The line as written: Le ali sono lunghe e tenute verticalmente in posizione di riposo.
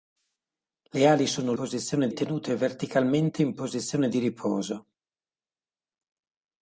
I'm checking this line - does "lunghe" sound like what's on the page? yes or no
no